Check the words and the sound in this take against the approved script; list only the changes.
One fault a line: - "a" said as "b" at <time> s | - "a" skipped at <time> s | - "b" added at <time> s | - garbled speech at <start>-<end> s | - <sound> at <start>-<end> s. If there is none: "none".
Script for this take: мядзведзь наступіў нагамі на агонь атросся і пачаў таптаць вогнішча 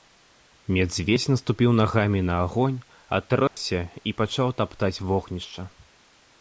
- dropout at 3.5-3.6 s